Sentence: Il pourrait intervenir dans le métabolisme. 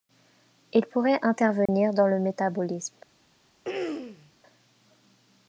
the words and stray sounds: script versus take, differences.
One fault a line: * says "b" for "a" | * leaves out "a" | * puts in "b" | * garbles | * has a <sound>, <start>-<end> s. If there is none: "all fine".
* has a dropout, 1.7-1.7 s
* has a throat clearing, 3.6-4.3 s